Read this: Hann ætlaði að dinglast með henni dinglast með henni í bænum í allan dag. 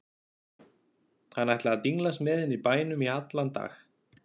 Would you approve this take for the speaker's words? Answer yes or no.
no